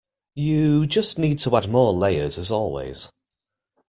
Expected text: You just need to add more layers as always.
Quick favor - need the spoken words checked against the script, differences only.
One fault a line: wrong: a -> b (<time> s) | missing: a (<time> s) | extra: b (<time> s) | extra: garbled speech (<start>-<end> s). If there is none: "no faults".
no faults